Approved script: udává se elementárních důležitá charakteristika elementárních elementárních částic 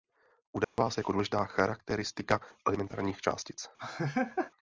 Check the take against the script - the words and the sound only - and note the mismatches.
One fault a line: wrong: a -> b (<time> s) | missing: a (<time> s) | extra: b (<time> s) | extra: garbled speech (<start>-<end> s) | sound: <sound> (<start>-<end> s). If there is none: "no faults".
sound: dropout (0.6-0.8 s)
wrong: elementárních -> jako (1.0 s)
missing: elementárních (3.2 s)
sound: laugh (3.8-4.5 s)